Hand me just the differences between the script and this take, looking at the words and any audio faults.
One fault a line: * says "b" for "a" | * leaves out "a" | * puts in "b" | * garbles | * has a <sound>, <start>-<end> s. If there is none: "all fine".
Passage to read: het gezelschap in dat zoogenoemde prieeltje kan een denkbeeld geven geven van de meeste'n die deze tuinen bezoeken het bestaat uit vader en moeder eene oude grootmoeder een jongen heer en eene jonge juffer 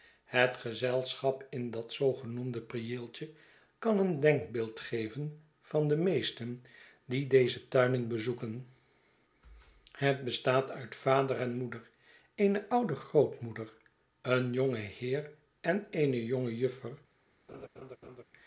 * leaves out "geven"
* has a laugh, 17.5-18.2 s